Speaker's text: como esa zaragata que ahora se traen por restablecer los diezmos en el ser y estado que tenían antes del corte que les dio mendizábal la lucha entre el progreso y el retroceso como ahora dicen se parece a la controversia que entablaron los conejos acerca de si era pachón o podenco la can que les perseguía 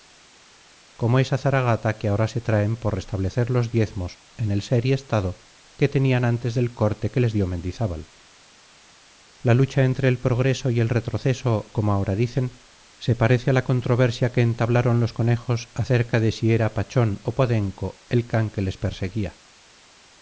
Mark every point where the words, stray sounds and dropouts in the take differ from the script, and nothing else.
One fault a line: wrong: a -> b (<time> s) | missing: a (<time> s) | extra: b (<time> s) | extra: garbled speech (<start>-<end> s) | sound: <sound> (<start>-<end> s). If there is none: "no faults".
wrong: la -> el (18.1 s)